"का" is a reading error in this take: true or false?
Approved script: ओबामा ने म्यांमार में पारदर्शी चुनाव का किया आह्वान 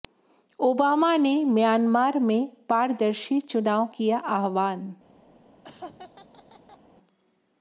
true